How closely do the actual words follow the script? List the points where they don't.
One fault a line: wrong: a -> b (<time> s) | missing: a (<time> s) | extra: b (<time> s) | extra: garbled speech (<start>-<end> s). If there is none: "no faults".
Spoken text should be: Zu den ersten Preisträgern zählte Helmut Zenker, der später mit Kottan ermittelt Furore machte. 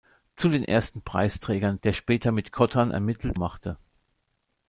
missing: zählte Helmut Zenker (1.8 s)
missing: Furore (3.4 s)